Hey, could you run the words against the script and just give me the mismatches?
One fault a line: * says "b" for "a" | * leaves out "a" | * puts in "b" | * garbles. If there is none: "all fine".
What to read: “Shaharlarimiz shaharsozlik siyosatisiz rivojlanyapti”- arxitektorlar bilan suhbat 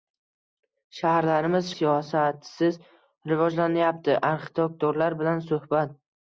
* leaves out "shaharsozlik"